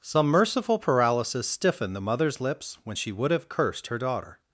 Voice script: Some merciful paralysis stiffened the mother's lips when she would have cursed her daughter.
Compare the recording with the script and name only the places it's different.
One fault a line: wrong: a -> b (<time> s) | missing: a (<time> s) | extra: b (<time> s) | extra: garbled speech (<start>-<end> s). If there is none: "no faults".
no faults